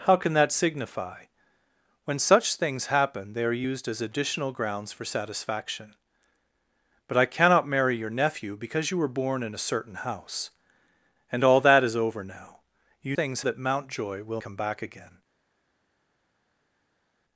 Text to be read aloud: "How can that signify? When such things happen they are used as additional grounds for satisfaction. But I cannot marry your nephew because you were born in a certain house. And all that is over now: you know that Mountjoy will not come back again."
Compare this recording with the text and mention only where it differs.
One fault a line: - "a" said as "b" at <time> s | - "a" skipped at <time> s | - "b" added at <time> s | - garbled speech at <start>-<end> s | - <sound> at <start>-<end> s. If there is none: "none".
- "know" said as "things" at 13.1 s
- "not" skipped at 14.4 s